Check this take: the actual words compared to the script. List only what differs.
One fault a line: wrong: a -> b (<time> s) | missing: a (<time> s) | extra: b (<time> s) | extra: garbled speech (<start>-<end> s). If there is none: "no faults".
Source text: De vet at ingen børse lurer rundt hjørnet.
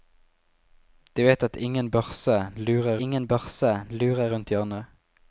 extra: ingen børse lurer (3.0 s)